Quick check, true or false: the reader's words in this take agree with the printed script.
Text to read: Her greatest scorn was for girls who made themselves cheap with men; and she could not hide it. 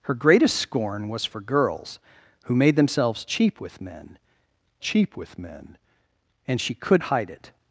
false